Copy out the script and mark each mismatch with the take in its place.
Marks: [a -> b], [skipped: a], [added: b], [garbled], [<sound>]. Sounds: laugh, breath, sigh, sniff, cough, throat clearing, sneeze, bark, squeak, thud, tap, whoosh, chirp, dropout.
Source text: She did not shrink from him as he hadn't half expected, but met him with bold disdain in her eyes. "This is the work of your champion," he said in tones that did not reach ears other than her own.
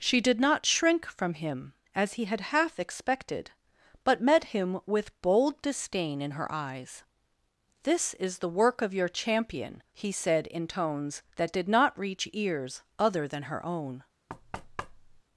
She did not shrink from him as he [hadn't -> had] half expected, but met him with bold disdain in her eyes. "This is the work of your champion," he said in tones that did not reach ears other than her own. [thud]